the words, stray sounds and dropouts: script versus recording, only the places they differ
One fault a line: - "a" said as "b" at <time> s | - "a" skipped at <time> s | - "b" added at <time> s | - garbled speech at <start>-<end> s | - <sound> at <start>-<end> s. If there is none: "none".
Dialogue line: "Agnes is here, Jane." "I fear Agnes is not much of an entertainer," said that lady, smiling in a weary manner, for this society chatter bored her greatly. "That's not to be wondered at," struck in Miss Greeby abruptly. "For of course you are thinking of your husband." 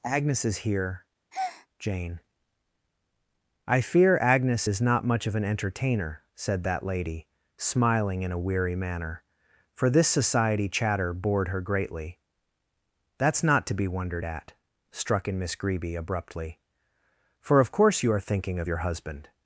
- breath at 1.3-1.7 s